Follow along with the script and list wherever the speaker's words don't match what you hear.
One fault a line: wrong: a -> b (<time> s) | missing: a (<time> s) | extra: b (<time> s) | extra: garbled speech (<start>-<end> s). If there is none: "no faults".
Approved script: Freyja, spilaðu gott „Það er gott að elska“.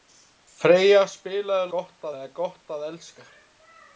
no faults